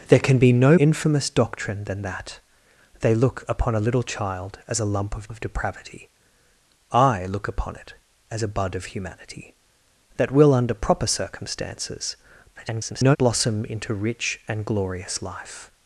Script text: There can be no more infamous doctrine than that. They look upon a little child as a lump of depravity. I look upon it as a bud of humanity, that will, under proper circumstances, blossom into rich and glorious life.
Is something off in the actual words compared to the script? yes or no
yes